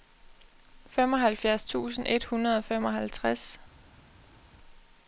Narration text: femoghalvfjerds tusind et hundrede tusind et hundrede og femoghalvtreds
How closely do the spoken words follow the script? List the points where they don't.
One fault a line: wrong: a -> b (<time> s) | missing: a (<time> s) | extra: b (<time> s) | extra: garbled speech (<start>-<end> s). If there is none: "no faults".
missing: tusind et hundrede (2.6 s)